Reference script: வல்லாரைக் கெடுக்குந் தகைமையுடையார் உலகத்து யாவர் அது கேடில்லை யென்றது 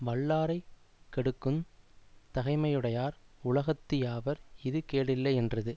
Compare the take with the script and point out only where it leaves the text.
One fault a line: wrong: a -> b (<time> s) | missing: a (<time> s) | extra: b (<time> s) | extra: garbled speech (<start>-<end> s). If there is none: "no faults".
wrong: அது -> இது (4.6 s)